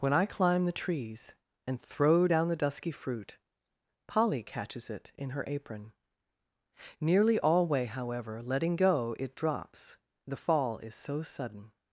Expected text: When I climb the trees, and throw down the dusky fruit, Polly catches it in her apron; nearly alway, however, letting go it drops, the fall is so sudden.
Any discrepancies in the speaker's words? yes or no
no